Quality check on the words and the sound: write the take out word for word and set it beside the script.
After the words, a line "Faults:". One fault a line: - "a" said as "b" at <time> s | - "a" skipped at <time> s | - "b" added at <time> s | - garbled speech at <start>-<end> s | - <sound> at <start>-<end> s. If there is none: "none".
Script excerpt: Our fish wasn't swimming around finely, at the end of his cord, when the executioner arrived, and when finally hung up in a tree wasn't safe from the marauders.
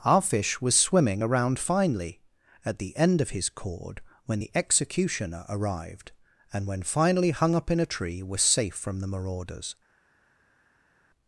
Our fish was swimming around finely, at the end of his cord, when the executioner arrived, and when finally hung up in a tree was safe from the marauders.
Faults:
- "wasn't" said as "was" at 0.6 s
- "wasn't" said as "was" at 8.2 s